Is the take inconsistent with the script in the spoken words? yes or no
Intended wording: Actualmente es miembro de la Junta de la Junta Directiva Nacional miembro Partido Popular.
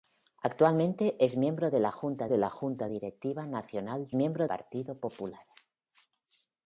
no